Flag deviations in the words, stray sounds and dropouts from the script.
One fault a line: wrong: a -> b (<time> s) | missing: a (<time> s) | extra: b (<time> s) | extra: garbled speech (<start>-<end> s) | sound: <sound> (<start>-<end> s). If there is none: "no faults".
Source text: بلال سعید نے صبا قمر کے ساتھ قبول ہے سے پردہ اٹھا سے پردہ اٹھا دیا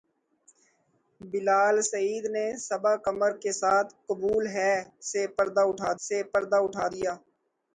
no faults